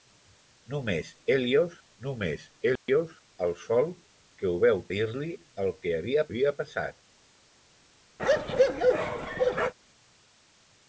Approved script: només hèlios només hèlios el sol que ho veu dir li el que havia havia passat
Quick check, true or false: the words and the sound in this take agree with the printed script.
false